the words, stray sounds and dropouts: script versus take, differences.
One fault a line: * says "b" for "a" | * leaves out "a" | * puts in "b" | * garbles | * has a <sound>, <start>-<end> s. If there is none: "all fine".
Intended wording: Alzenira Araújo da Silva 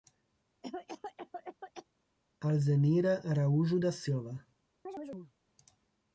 * has a cough, 0.6-1.9 s
* has a chirp, 4.9-5.3 s